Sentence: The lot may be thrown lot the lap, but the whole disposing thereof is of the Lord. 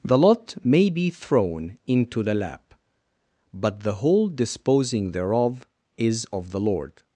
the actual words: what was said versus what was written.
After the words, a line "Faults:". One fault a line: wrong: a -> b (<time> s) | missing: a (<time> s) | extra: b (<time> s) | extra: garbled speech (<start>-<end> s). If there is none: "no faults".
The lot may be thrown into the lap, but the whole disposing thereof is of the Lord.
Faults:
wrong: lot -> into (1.9 s)